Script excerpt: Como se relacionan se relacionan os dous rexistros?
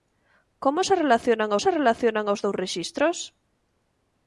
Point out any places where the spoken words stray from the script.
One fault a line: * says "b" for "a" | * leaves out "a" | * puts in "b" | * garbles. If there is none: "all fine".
all fine